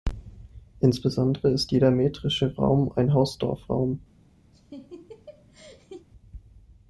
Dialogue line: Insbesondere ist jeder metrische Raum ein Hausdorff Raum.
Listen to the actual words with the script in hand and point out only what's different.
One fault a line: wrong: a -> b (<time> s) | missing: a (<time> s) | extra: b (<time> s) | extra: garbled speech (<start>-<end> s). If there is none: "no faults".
no faults